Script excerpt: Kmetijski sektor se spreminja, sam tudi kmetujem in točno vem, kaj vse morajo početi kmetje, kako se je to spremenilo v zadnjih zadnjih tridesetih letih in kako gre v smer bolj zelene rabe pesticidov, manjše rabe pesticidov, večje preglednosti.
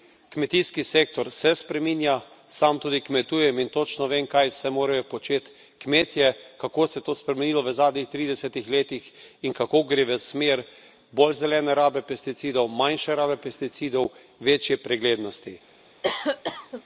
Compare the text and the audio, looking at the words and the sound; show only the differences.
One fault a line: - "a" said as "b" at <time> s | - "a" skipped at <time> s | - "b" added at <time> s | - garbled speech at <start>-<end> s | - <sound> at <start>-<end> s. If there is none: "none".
- "zadnjih" skipped at 8.1 s
- cough at 16.0-16.8 s